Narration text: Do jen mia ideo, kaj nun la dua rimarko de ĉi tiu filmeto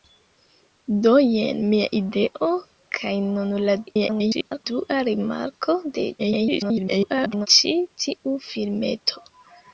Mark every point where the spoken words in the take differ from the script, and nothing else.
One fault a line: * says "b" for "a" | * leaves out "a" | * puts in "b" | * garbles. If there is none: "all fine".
* garbles
* garbles